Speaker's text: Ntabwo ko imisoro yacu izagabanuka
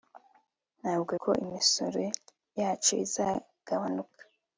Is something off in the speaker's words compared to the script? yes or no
no